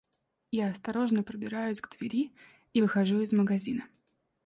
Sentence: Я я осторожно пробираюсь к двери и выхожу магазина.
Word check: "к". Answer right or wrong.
right